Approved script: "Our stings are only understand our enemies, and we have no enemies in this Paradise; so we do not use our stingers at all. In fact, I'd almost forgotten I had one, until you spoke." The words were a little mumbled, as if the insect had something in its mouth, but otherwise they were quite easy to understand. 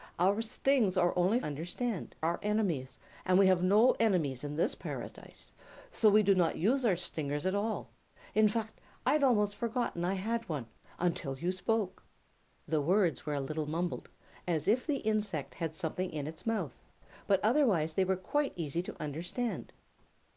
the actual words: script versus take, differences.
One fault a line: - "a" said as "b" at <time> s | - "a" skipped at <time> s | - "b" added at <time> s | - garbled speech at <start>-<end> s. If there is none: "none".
none